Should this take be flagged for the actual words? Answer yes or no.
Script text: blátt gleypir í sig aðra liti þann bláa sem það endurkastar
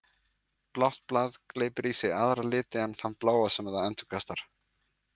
yes